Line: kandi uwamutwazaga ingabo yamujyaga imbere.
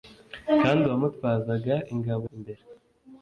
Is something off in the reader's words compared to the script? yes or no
yes